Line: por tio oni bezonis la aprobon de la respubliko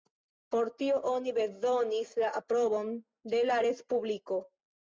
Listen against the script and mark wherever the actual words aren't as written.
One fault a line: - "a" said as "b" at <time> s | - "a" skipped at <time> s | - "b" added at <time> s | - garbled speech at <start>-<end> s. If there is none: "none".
none